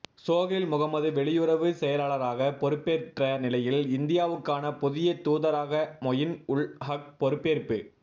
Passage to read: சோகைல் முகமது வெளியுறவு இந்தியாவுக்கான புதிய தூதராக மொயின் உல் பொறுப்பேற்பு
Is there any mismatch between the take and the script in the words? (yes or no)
yes